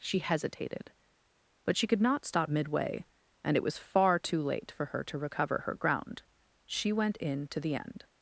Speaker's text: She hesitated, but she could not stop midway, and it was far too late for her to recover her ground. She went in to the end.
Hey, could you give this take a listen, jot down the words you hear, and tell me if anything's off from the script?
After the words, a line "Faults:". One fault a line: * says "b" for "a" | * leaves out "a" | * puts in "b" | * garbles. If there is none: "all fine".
She hesitated, but she could not stop midway, and it was far too late for her to recover her ground. She went in to the end.
Faults:
all fine